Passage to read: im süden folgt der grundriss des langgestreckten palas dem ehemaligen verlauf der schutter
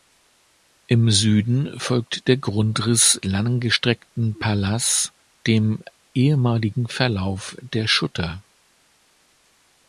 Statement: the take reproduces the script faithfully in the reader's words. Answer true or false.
false